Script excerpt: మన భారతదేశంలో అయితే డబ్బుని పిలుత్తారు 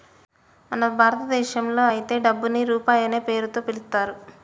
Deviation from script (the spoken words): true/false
true